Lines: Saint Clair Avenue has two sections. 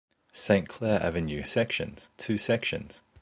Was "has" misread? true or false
true